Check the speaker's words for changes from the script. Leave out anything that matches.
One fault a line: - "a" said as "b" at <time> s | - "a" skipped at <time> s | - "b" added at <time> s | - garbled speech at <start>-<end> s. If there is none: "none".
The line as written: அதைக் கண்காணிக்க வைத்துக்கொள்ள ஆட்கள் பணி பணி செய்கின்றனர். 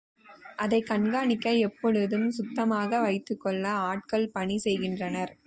- "எப்பொழுதும் சுத்தமாக" added at 1.6 s
- "பணி" skipped at 4.6 s